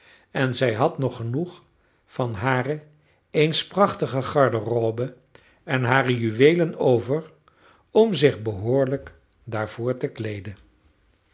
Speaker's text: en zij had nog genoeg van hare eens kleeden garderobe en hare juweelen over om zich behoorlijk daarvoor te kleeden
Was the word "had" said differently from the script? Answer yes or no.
no